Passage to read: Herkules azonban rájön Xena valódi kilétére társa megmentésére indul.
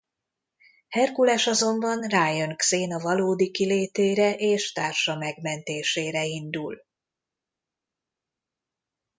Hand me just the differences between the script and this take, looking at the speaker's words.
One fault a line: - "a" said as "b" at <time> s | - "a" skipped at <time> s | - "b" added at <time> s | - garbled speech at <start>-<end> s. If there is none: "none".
- "és" added at 4.4 s